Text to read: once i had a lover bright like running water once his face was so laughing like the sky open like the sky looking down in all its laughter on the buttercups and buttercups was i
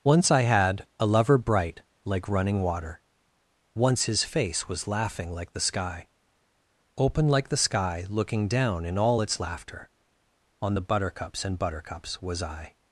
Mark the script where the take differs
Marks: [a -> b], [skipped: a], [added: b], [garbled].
once i had a lover bright like running water once his face was [skipped: so] laughing like the sky open like the sky looking down in all its laughter on the buttercups and buttercups was i